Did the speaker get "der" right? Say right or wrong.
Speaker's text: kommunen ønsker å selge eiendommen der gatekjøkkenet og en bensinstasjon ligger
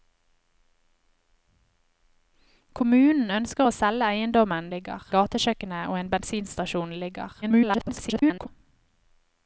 wrong